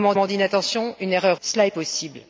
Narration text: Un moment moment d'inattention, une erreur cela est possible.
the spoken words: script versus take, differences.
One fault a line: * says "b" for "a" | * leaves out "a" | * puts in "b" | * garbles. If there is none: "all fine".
all fine